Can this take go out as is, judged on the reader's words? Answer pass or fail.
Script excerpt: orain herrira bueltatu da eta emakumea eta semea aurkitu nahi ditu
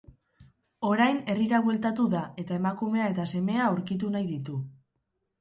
pass